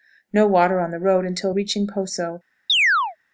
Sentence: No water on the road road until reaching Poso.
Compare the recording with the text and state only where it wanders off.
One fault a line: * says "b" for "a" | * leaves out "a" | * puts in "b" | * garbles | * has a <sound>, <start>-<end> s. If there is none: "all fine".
* leaves out "road"
* has a chirp, 2.7-3.2 s